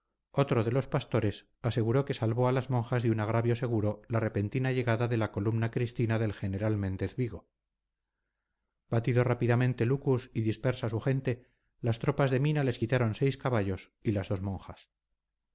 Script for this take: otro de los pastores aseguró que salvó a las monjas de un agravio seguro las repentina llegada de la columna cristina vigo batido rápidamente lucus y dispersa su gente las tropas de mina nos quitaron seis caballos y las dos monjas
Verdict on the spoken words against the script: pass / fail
fail